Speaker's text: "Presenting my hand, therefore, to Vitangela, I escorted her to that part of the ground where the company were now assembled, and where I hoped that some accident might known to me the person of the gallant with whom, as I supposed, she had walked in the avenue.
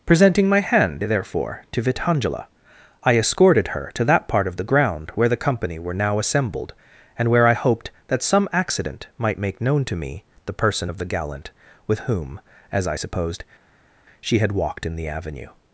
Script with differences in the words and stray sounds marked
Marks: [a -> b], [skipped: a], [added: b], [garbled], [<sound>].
"Presenting my hand, therefore, to Vitangela, I escorted her to that part of the ground where the company were now assembled, and where I hoped that some accident might [added: make] known to me the person of the gallant with whom, as I supposed, she had walked in the avenue.